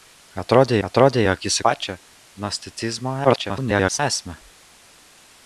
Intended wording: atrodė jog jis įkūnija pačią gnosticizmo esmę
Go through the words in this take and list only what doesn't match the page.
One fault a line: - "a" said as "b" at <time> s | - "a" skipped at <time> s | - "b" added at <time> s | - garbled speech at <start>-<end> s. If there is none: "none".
- "atrodė" added at 0.9 s
- "įkūnija" skipped at 1.6 s
- garbled speech at 3.2-4.0 s